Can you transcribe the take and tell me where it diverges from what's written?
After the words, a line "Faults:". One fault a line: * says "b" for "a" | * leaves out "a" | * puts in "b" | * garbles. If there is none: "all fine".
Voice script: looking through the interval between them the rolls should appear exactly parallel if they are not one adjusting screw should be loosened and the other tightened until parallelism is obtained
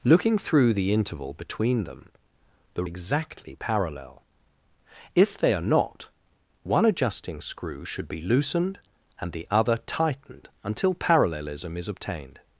looking through the interval between them the exactly parallel if they are not one adjusting screw should be loosened and the other tightened until parallelism is obtained
Faults:
* leaves out "rolls should appear"